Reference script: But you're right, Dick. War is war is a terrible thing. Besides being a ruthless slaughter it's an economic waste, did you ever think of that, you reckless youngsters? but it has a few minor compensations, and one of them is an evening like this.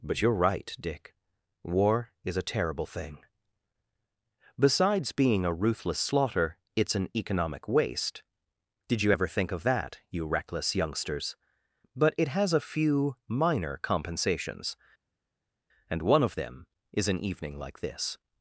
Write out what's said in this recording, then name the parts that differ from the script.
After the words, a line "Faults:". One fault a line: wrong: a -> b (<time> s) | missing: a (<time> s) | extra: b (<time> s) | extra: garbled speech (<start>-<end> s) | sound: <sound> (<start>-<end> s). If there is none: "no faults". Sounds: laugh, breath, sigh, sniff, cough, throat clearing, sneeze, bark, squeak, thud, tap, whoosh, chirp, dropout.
But you're right, Dick. War is a terrible thing. Besides being a ruthless slaughter it's an economic waste, did you ever think of that, you reckless youngsters? but it has a few minor compensations, and one of them is an evening like this.
Faults:
missing: war is (2.4 s)